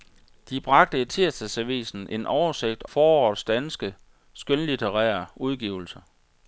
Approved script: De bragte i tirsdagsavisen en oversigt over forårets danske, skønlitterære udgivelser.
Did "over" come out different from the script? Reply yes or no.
yes